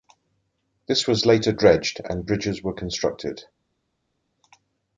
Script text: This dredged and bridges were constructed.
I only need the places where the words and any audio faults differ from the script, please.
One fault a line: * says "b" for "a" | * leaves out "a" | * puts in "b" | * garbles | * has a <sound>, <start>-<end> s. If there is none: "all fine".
* puts in "was later"